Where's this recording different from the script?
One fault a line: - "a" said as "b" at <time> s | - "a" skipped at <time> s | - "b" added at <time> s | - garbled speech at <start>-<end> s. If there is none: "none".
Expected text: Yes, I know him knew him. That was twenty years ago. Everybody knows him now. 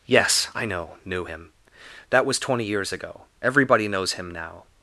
- "him" skipped at 1.0 s